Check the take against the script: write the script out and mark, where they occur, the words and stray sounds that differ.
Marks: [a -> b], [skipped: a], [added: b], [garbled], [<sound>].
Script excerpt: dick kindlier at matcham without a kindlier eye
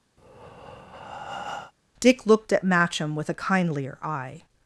[breath] dick [kindlier -> looked] at matcham [without -> with] a kindlier eye